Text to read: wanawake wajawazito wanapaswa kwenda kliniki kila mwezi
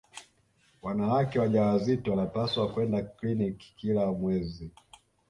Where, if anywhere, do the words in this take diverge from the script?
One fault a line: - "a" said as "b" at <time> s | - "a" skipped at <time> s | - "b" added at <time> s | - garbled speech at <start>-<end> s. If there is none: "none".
none